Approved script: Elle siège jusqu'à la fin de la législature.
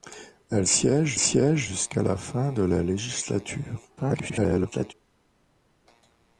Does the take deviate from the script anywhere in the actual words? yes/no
yes